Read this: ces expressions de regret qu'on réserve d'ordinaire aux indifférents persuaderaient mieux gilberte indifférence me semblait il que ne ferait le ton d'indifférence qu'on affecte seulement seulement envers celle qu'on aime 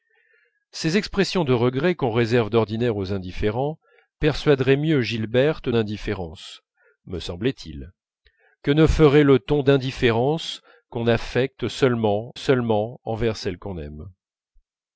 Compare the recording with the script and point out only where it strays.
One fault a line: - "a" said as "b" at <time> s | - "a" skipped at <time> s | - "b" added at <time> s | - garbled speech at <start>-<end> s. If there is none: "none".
none